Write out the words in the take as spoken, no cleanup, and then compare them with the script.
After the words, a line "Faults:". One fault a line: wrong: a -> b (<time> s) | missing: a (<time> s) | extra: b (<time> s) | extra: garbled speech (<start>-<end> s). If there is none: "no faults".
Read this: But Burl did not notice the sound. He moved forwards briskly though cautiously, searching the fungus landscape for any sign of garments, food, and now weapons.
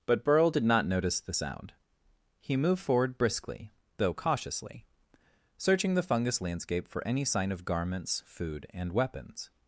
But Burl did not notice the sound. He moved forward briskly though cautiously, searching the fungus landscape for any sign of garments, food, and weapons.
Faults:
wrong: forwards -> forward (2.8 s)
missing: now (8.9 s)